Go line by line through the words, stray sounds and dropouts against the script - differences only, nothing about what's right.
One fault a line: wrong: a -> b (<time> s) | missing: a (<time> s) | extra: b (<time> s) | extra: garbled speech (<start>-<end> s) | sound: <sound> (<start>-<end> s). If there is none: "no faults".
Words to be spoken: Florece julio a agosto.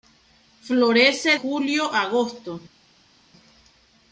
no faults